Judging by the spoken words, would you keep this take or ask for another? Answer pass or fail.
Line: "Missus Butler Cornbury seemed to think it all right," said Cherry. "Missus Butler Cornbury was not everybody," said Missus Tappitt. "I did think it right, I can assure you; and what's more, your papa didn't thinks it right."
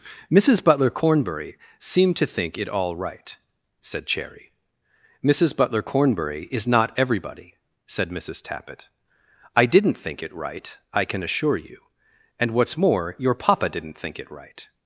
fail